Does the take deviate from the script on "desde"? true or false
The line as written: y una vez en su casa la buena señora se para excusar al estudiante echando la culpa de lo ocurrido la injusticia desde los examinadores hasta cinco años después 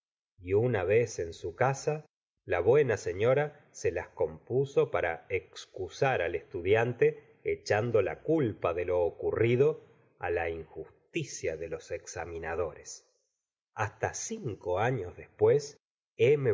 true